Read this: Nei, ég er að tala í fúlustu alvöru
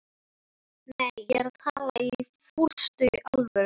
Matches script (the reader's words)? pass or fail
pass